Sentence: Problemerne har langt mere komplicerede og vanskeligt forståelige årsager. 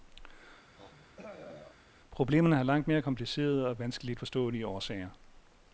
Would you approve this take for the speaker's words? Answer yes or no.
yes